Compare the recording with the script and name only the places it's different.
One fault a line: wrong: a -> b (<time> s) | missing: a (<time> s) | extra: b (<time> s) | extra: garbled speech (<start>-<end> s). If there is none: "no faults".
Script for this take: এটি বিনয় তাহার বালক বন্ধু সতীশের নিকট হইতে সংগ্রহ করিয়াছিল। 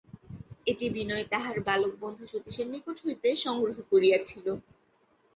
no faults